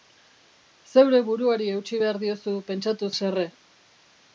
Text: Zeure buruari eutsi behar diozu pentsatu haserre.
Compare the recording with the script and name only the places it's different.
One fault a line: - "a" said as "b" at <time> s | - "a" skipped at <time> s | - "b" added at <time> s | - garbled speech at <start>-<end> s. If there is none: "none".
none